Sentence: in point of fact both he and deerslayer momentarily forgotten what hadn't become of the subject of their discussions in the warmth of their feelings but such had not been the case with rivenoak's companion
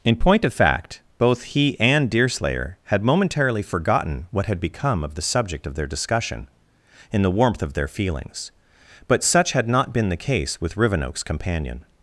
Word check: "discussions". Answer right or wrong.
wrong